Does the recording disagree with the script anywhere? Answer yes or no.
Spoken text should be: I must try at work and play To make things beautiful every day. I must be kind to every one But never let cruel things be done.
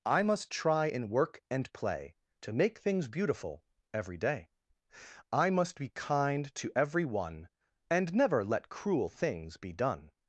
yes